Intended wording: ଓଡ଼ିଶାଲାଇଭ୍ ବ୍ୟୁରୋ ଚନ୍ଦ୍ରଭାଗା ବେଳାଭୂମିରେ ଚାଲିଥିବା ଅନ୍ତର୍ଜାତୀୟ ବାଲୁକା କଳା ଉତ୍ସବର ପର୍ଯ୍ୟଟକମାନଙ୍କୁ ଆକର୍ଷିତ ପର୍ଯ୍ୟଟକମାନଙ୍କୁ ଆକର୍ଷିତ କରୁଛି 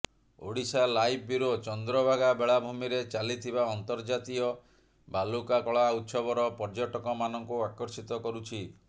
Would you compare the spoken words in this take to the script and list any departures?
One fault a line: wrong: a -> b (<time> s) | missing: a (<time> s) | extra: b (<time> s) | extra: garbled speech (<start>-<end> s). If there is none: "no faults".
missing: ପର୍ଯ୍ୟଟକମାନଙ୍କୁ ଆକର୍ଷିତ (8.2 s)